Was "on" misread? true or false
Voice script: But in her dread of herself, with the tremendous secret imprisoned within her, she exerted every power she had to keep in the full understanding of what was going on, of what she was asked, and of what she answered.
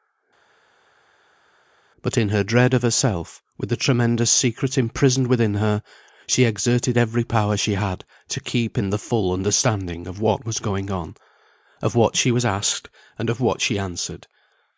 false